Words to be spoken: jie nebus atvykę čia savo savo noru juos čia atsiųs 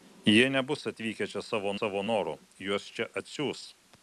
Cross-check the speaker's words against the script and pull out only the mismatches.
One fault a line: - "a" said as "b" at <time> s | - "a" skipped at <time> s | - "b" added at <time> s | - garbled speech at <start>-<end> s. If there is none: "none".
none